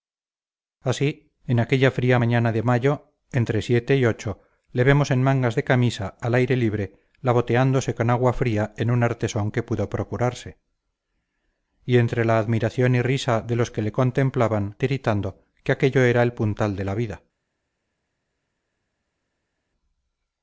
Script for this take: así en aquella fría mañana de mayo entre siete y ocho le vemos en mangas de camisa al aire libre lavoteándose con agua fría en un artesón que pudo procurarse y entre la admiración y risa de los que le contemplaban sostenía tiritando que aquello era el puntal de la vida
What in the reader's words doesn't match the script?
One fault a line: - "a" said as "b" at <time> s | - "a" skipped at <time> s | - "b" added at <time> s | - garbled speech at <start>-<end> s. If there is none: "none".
- "sostenía" skipped at 14.8 s